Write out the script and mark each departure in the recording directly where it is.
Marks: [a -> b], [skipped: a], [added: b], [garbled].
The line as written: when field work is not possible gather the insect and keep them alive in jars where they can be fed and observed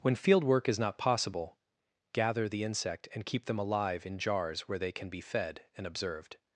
when field work is not possible gather the insect and keep them alive in jars where they can be fed and observed